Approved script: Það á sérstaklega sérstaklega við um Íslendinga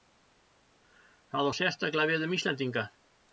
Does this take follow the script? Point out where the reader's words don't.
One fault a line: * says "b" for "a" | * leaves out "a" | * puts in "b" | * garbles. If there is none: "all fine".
* leaves out "sérstaklega"